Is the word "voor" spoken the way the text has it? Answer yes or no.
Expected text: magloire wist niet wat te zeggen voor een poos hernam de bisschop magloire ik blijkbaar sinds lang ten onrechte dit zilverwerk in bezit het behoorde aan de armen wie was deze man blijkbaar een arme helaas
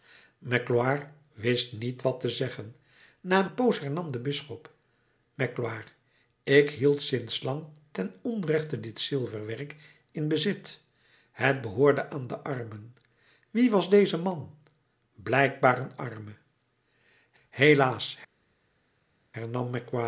no